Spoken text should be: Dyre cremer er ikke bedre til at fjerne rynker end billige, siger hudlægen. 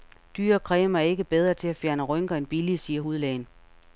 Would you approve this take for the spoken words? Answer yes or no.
yes